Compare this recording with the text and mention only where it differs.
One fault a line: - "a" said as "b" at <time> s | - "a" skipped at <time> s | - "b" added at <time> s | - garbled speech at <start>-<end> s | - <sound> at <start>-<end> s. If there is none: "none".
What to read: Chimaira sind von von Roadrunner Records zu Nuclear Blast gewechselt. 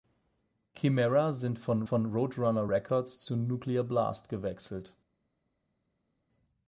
none